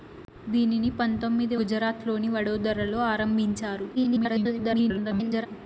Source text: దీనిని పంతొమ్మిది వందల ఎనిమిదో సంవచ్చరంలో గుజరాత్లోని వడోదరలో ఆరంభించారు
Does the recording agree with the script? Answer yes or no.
no